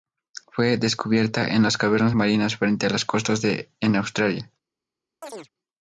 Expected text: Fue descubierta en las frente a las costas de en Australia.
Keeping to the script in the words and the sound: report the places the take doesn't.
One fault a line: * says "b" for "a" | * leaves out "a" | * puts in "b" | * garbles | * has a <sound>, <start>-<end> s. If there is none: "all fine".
* puts in "cavernas marinas"
* has a chirp, 5.2-5.5 s